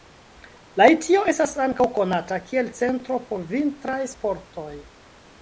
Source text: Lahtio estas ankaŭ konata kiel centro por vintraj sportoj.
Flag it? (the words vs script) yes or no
no